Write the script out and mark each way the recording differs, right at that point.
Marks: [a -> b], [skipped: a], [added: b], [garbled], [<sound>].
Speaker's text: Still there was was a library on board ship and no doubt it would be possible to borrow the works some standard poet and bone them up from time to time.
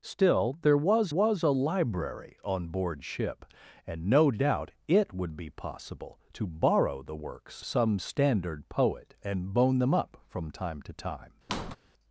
Still there was was a library on board ship and no doubt it would be possible to borrow the works some standard poet and bone them up from time to time. [squeak]